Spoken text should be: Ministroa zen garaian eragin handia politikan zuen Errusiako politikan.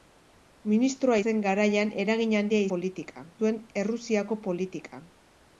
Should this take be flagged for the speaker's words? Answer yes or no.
no